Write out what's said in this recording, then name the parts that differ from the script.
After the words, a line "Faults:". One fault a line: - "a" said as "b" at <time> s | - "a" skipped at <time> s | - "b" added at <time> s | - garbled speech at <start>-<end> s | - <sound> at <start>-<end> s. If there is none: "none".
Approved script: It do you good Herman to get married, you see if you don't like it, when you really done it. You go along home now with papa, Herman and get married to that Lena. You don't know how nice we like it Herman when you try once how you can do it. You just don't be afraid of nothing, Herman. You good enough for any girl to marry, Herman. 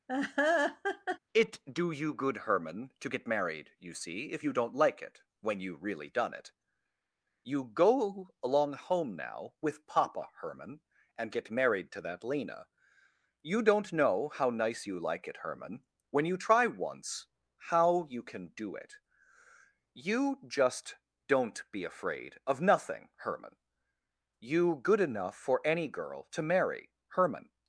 It do you good Herman to get married, you see if you don't like it, when you really done it. You go along home now with papa, Herman and get married to that Lena. You don't know how nice you like it Herman when you try once how you can do it. You just don't be afraid of nothing, Herman. You good enough for any girl to marry, Herman.
Faults:
- laugh at 0.1-1.2 s
- "we" said as "you" at 14.9 s